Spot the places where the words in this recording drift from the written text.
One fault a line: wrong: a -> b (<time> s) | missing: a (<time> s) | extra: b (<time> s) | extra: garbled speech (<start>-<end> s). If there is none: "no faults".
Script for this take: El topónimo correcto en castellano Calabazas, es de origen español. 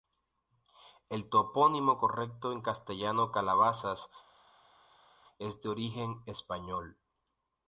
no faults